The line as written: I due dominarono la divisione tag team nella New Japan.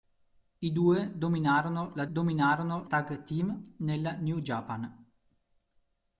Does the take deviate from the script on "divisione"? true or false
true